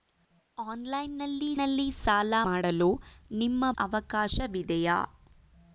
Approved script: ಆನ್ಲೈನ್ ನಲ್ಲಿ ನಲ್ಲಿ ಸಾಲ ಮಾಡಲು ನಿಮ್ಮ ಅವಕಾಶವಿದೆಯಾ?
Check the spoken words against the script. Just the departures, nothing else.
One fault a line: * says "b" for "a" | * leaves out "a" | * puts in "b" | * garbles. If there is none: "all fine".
all fine